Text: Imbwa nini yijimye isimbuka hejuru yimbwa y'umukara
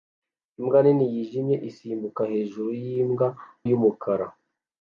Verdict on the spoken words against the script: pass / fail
pass